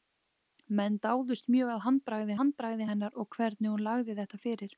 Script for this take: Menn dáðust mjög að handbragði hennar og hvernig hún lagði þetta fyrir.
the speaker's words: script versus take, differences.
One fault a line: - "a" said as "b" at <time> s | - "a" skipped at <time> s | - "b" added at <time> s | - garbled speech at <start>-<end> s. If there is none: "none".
- "handbragði" added at 2.4 s